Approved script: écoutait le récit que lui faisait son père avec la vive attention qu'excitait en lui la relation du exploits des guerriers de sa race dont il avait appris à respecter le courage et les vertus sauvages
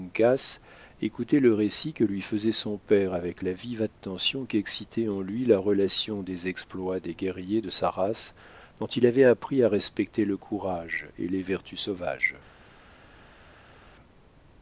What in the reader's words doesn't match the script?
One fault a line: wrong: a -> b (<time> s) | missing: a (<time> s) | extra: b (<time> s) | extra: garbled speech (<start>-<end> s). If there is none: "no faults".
wrong: du -> des (6.2 s)